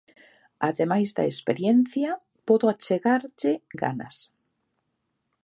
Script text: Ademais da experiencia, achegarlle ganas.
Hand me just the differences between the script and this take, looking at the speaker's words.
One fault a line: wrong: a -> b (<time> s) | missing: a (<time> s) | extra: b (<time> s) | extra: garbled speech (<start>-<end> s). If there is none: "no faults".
extra: podo (2.5 s)